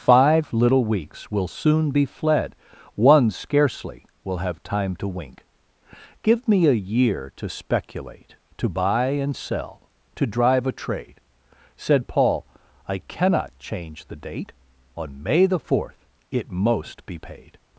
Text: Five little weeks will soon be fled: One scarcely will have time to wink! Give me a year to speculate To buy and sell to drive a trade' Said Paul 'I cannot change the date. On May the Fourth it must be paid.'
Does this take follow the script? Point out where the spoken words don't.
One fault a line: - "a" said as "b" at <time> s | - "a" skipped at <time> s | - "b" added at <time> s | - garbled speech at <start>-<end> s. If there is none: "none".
- "must" said as "most" at 16.5 s